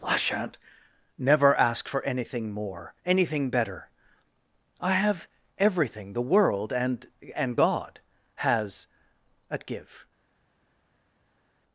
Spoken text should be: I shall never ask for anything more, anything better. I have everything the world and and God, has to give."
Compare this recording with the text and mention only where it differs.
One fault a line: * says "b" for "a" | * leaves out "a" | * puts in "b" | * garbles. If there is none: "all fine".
* says "shan't" for "shall"
* says "at" for "to"